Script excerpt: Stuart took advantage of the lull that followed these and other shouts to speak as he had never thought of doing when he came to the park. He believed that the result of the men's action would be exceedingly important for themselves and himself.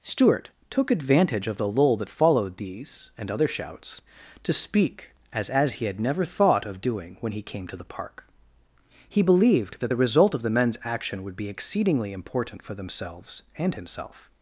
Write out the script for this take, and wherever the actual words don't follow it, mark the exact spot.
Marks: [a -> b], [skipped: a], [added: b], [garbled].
Stuart took advantage of the lull that followed these and other shouts to speak as [added: as] he had never thought of doing when he came to the park. He believed that the result of the men's action would be exceedingly important for themselves and himself.